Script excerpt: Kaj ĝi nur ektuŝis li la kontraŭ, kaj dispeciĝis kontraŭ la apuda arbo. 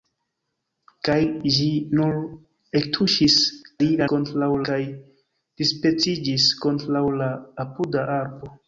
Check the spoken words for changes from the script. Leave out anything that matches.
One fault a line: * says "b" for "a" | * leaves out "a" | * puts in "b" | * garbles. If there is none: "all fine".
all fine